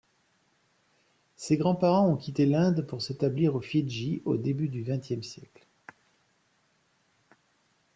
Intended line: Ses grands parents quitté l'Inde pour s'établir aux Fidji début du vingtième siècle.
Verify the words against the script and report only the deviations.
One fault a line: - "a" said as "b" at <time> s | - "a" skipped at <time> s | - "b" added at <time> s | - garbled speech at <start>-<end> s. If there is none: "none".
- "ont" added at 2.1 s
- "au" added at 4.3 s